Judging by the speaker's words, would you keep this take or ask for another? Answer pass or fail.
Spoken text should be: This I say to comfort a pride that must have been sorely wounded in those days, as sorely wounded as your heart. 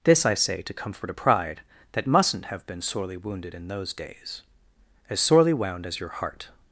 fail